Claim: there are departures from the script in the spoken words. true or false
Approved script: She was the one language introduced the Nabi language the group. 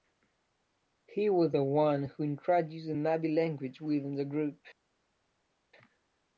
true